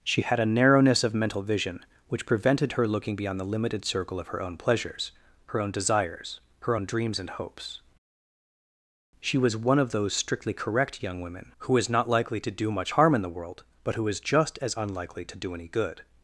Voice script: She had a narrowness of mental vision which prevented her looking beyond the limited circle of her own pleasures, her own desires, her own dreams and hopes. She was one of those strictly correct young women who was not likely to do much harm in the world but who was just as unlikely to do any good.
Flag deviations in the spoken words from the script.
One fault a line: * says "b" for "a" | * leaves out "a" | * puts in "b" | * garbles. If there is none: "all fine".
* says "is" for "was"
* says "is" for "was"